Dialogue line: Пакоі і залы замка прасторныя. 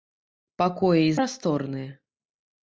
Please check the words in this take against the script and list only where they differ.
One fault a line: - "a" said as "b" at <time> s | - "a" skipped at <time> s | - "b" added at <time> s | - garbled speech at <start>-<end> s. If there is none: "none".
- "залы замка" skipped at 1.1 s